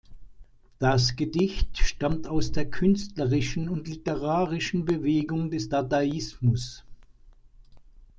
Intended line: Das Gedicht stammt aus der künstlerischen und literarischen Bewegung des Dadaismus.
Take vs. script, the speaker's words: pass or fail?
pass